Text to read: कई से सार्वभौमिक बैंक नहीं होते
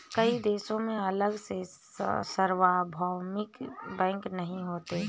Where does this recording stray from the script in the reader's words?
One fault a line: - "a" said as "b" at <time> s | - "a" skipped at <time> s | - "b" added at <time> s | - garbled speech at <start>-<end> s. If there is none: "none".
- "देशों में अलग" added at 0.4 s